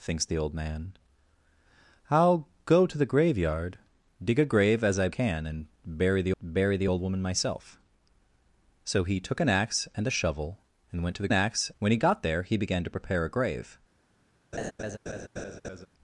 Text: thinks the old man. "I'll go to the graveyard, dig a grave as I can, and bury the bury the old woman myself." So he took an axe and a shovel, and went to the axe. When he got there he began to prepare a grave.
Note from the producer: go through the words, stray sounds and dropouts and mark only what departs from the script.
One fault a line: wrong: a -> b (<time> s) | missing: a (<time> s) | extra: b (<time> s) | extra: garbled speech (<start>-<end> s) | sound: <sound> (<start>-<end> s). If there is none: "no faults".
sound: laugh (14.5-15.9 s)